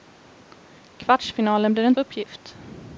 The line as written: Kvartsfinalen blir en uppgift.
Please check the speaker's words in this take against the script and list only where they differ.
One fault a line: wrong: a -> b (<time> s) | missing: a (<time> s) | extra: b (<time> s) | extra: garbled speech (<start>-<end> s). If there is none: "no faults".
no faults